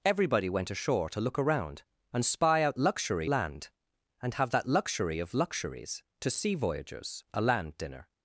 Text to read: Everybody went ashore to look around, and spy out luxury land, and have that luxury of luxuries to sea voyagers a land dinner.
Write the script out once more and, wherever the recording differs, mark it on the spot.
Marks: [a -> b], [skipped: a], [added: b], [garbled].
Everybody went ashore to look around, and spy out luxury land, and have that luxury of luxuries to sea voyagers a land dinner.